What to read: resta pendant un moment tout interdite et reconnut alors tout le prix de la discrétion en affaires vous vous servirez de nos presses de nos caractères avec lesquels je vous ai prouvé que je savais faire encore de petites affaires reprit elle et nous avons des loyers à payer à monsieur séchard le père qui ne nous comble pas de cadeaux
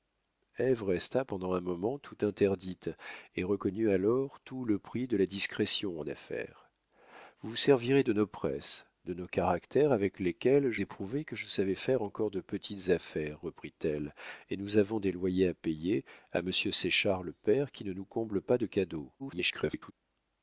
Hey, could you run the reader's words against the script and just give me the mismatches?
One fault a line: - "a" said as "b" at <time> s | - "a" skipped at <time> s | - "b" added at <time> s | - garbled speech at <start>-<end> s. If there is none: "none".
- "vous" skipped at 10.8 s
- garbled speech at 19.2-19.9 s